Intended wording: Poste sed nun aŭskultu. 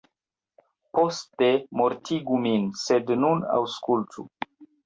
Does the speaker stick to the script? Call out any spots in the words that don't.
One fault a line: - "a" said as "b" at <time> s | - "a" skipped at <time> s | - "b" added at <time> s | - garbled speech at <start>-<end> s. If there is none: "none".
- "mortigu min" added at 1.8 s